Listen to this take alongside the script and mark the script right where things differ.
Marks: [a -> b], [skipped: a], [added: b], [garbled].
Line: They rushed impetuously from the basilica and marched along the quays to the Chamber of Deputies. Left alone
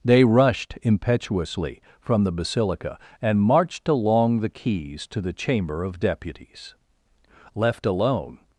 They rushed impetuously from the basilica and marched along the quays to the Chamber of Deputies. Left alone